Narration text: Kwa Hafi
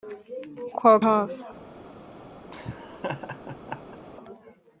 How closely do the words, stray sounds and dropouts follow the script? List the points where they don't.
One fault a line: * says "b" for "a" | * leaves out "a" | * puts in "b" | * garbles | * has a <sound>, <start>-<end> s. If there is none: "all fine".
* has a laugh, 2.5-4.0 s